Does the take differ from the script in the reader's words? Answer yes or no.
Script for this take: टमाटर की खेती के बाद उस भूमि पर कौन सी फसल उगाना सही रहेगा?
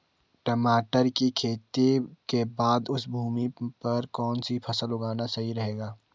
no